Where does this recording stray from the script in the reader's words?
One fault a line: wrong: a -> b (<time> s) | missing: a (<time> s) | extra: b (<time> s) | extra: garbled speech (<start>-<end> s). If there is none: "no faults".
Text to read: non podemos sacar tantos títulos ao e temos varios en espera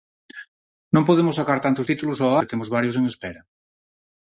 no faults